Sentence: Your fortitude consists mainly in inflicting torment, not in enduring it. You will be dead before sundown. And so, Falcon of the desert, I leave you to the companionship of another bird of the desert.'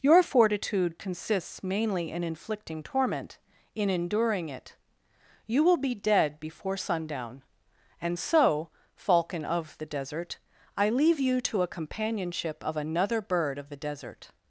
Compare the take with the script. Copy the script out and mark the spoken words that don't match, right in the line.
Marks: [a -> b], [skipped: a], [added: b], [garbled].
Your fortitude consists mainly in inflicting torment, [skipped: not] in enduring it. You will be dead before sundown. And so, Falcon of the desert, I leave you to [the -> a] companionship of another bird of the desert.'